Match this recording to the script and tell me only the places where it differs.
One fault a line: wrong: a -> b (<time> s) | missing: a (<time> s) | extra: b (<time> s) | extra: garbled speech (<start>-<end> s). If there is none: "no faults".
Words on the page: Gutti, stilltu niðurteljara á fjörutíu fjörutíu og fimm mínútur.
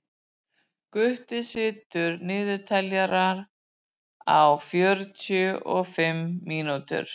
missing: fjörutíu (5.5 s)